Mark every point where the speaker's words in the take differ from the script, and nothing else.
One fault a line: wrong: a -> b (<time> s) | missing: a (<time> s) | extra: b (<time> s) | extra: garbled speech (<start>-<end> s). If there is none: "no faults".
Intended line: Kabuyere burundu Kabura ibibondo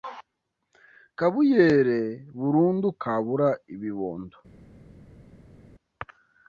no faults